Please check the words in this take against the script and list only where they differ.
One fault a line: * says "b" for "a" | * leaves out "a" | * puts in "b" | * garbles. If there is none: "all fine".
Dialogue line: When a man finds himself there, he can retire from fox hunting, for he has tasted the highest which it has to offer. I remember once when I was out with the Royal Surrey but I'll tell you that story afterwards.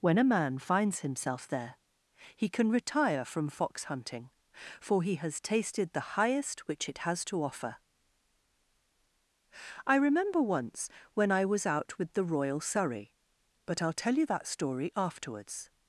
all fine